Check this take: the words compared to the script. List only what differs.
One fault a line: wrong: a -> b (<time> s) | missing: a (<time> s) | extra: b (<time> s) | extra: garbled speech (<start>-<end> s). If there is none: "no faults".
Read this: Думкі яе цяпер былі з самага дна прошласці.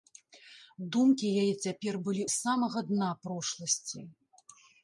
no faults